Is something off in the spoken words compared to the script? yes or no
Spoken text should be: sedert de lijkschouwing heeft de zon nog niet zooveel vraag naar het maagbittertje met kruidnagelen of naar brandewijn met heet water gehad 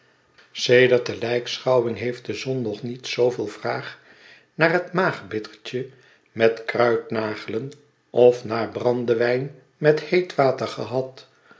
no